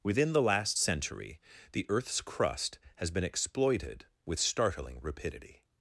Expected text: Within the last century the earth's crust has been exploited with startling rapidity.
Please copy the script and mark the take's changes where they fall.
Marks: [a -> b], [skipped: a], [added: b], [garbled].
Within the last century the earth's crust has been exploited with startling rapidity.